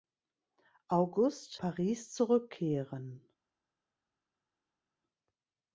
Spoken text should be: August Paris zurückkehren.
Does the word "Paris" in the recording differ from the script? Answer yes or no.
no